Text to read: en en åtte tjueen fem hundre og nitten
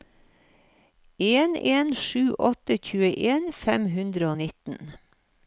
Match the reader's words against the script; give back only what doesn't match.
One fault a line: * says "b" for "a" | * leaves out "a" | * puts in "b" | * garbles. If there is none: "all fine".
* puts in "sju"